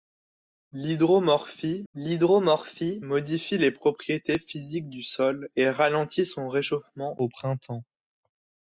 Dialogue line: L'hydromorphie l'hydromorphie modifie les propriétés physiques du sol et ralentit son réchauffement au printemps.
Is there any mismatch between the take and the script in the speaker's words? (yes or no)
no